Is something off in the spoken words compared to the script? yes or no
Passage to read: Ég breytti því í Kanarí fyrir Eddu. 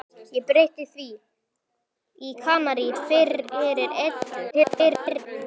yes